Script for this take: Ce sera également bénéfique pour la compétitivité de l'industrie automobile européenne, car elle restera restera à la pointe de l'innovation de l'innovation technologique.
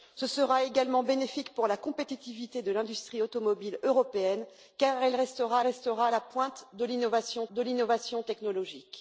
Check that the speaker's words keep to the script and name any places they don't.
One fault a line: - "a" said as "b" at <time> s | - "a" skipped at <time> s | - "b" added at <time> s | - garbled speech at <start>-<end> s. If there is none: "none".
none